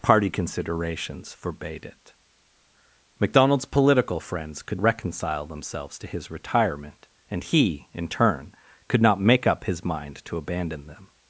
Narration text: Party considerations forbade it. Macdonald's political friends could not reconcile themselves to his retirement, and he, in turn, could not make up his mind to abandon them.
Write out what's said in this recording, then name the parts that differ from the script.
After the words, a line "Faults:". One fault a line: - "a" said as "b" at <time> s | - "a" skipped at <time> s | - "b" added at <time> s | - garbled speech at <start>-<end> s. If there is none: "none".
Party considerations forbade it. Macdonald's political friends could reconcile themselves to his retirement, and he, in turn, could not make up his mind to abandon them.
Faults:
- "not" skipped at 4.8 s